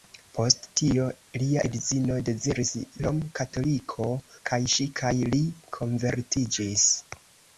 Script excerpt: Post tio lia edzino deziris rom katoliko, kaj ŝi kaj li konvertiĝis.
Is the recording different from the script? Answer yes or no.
no